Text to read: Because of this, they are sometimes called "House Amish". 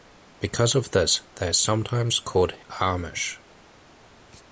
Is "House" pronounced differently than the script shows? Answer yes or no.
yes